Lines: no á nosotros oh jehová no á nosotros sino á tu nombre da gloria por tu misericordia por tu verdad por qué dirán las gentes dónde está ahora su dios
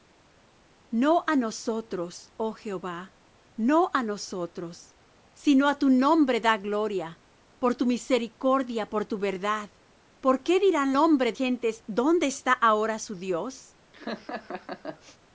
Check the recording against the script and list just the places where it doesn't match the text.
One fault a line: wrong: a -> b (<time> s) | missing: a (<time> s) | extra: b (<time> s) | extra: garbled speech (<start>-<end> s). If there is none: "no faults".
wrong: las -> nombre (11.0 s)